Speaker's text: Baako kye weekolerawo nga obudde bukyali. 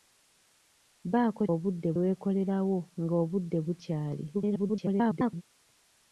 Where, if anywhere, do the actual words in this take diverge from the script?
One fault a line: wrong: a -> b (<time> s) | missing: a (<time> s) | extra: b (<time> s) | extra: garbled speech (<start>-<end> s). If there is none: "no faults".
wrong: kye -> obudde (1.5 s)
extra: garbled speech (4.3-5.4 s)